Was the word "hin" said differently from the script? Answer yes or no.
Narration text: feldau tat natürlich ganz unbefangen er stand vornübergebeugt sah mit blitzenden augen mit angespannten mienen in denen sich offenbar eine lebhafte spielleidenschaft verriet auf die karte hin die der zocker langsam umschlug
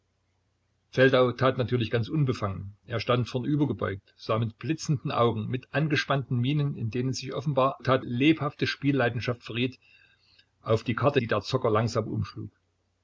yes